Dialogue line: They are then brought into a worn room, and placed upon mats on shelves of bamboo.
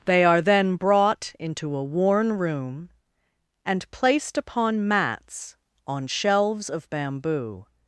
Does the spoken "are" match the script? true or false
true